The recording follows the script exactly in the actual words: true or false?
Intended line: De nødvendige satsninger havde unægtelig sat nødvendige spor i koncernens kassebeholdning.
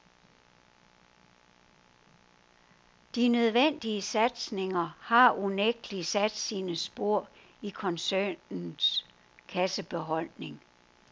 false